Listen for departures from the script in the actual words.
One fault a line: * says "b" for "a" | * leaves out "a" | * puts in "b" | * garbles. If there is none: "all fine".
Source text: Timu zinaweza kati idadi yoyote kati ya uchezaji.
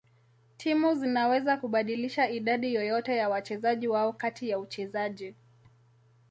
* says "kubadilisha" for "kati"
* puts in "ya wachezaji wao"